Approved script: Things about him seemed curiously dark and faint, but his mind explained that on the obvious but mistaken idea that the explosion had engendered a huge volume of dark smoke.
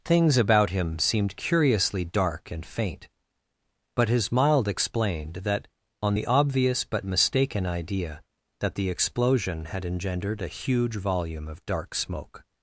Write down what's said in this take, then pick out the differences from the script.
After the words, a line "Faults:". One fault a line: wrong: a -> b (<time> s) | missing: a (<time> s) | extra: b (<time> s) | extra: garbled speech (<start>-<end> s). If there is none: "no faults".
Things about him seemed curiously dark and faint, but his mild explained that on the obvious but mistaken idea that the explosion had engendered a huge volume of dark smoke.
Faults:
wrong: mind -> mild (4.3 s)